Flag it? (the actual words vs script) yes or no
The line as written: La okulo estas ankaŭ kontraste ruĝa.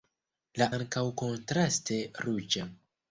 yes